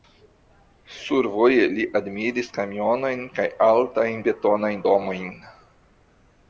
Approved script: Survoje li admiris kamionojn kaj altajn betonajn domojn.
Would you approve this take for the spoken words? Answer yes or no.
yes